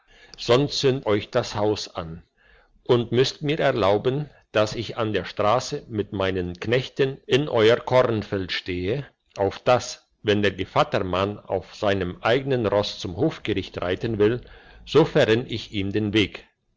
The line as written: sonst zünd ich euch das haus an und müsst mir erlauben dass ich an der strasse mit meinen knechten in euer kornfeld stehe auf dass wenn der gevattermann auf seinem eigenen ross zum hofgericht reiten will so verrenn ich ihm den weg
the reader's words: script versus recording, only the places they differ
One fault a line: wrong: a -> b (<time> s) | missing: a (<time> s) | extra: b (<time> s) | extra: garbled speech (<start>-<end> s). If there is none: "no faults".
missing: ich (1.1 s)